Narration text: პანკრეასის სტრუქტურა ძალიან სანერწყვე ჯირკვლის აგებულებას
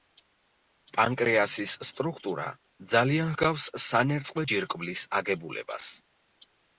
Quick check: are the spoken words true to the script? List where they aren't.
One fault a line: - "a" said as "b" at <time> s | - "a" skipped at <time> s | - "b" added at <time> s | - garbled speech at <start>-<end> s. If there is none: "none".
- "ჰგავს" added at 3.3 s